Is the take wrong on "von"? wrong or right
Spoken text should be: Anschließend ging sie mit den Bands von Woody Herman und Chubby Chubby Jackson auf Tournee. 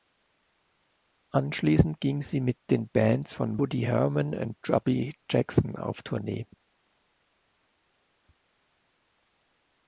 right